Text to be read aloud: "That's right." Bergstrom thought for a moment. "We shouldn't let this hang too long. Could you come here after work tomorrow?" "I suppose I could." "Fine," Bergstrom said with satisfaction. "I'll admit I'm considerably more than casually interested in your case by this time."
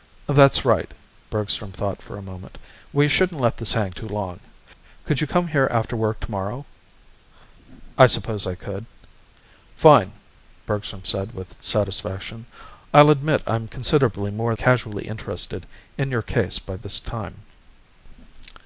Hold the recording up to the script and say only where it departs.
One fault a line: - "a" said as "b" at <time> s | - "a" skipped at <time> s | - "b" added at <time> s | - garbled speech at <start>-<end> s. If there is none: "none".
- "than" skipped at 14.6 s